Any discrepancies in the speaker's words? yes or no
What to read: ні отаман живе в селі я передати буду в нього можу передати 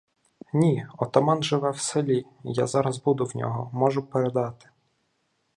yes